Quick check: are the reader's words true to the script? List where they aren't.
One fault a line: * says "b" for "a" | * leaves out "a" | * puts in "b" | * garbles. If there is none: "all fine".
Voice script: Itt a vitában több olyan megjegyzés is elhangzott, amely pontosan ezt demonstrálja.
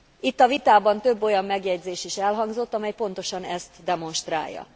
all fine